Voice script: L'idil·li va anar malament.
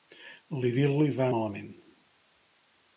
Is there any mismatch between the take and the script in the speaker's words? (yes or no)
yes